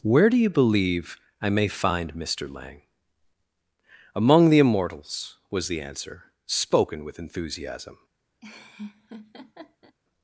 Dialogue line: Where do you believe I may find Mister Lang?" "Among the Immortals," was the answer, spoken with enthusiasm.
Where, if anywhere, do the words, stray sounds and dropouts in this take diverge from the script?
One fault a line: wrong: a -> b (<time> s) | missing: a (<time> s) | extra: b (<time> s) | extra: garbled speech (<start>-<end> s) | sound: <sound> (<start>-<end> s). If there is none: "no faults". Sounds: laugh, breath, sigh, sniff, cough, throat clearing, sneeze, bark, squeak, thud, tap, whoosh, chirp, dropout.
sound: laugh (8.4-10.0 s)